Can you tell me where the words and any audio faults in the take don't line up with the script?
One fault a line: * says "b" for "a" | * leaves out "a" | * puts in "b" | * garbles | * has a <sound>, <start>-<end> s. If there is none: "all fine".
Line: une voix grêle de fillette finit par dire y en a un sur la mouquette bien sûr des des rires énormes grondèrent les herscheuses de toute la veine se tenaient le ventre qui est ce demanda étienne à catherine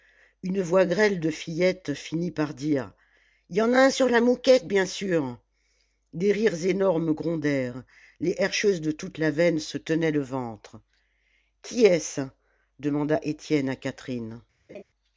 * leaves out "des"
* has a laugh, 14.7-14.8 s